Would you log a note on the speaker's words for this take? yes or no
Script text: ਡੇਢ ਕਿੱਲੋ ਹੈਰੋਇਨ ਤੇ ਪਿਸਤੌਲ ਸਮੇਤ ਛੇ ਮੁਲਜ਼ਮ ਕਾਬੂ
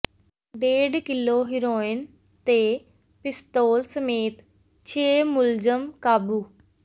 no